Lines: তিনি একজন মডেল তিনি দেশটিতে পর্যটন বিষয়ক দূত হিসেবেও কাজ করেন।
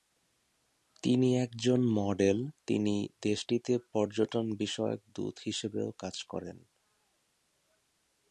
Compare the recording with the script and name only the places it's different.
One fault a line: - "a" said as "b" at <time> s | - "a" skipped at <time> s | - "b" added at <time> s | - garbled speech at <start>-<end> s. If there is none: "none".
none